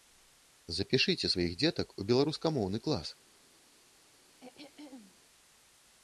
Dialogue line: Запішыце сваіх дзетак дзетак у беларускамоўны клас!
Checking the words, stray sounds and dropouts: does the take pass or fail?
fail